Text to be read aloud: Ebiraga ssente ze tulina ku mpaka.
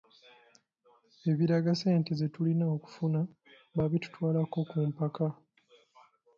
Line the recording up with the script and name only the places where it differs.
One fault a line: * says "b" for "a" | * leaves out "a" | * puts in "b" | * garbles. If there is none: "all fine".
* puts in "okufuna baabitutwalako"